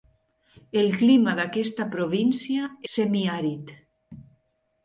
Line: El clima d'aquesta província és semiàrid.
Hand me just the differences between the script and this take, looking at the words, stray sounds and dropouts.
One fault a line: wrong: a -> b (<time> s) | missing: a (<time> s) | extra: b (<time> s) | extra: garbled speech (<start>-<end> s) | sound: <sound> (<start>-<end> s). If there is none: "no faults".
missing: és (2.7 s)